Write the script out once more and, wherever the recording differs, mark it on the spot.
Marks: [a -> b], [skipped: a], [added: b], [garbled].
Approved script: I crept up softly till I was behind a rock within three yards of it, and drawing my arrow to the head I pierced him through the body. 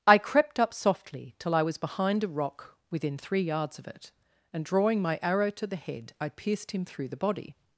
I crept up softly till I was behind a rock within three yards of it, and drawing my arrow to the head I pierced him through the body.